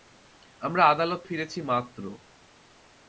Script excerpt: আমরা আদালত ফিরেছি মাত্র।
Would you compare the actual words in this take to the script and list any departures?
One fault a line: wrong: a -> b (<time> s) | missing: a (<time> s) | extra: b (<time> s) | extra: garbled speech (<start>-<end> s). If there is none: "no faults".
no faults